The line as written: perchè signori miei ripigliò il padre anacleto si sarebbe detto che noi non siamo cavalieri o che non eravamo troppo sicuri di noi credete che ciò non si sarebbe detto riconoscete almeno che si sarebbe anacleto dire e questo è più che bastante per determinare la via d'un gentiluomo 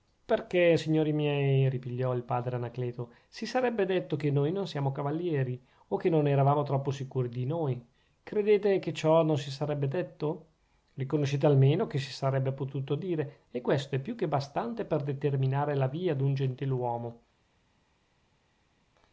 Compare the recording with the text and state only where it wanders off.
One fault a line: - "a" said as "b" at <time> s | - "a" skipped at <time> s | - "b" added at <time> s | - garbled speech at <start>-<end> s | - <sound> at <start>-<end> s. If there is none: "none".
- "anacleto" said as "potuto" at 12.5 s